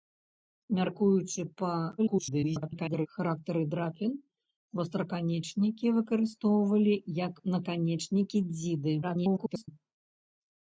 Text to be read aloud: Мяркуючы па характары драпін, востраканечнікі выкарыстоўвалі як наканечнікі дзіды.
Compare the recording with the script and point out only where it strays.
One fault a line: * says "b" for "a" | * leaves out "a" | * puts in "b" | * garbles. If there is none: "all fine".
* garbles
* garbles